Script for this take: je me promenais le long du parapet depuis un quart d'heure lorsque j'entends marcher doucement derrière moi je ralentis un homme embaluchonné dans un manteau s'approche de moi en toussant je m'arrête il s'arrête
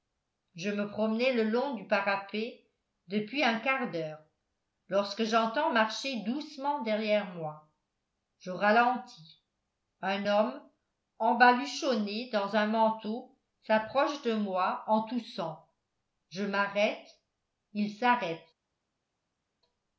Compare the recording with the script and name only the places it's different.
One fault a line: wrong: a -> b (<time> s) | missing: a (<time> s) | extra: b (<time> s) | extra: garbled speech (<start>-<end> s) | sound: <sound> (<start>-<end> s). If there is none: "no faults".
no faults